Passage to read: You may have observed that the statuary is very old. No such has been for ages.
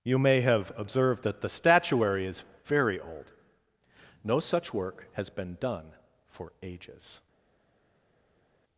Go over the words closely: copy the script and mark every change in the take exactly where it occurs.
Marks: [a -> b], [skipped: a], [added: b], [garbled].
You may have observed that the statuary is very old. No such [added: work] has been [added: done] for ages.